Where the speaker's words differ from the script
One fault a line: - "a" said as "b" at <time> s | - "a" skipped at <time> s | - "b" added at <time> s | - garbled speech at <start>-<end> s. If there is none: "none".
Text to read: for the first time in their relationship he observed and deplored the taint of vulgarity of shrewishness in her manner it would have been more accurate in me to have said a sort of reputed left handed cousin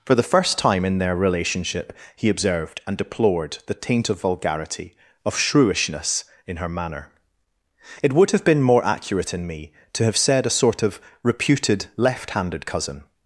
none